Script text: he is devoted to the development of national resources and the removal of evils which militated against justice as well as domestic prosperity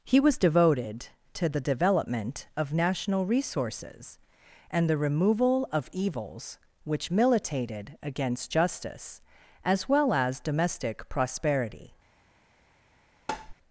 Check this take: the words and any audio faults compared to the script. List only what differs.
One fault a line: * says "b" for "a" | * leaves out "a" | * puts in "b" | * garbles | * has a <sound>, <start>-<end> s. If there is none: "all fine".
* says "was" for "is"
* has a tap, 13.3-13.5 s